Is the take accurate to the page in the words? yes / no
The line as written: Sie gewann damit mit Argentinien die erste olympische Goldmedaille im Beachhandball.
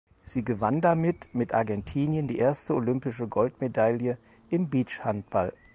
yes